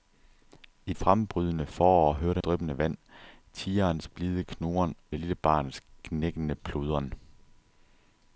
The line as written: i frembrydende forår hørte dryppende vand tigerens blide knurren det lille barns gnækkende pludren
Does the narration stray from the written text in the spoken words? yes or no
no